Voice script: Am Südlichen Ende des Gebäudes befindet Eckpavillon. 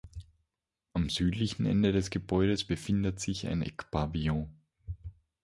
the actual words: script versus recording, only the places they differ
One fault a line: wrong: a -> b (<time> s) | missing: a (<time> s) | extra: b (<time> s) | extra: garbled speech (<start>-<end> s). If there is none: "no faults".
extra: sich ein (3.2 s)